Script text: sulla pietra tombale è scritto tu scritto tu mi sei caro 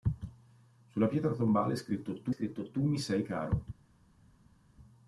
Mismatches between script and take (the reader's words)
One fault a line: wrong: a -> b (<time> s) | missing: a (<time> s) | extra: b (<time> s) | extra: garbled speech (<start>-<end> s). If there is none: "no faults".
no faults